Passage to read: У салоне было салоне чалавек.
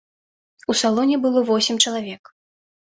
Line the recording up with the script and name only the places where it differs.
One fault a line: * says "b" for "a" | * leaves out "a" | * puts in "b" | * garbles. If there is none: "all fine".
* says "восем" for "салоне"